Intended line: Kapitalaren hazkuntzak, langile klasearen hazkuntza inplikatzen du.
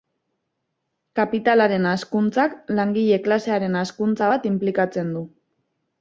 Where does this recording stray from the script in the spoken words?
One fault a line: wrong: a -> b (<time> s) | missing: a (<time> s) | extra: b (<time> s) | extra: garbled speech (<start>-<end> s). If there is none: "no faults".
extra: bat (4.3 s)